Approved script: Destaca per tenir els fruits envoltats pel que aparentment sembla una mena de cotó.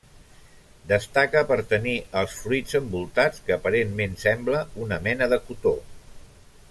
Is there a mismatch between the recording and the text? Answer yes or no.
yes